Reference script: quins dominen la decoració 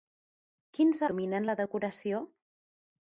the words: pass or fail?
pass